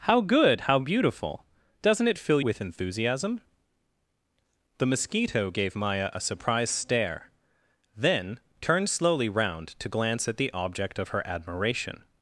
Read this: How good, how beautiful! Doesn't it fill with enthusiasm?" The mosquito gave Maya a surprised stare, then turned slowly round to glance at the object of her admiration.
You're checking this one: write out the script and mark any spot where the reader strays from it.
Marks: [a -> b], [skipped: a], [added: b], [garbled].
How good, how beautiful! Doesn't it fill with enthusiasm?" The mosquito gave Maya a surprised stare, then turned slowly round to glance at the object of her admiration.